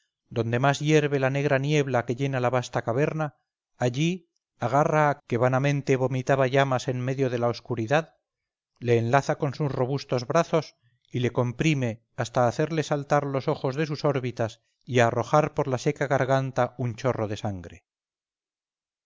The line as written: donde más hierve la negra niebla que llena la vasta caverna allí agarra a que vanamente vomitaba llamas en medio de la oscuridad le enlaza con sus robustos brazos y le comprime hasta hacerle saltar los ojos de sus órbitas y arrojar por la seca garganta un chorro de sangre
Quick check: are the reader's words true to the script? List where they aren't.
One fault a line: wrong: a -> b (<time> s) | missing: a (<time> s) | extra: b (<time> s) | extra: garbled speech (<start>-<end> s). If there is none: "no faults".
no faults